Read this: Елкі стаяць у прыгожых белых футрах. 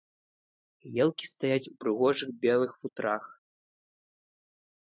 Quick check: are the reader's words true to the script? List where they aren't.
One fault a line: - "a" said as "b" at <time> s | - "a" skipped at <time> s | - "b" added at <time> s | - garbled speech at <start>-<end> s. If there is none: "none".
none